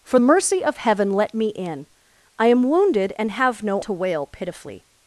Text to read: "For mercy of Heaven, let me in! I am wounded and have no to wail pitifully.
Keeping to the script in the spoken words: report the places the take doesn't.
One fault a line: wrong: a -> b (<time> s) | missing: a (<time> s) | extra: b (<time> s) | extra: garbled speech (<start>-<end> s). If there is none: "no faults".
no faults